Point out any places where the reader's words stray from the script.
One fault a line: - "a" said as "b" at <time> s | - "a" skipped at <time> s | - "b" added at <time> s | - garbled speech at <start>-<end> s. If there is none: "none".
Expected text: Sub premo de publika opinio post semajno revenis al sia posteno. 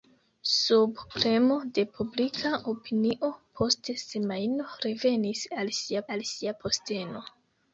- "al sia" added at 6.2 s